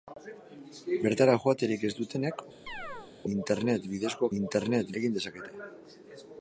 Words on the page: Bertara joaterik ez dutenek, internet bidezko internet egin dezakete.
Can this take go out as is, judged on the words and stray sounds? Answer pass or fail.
fail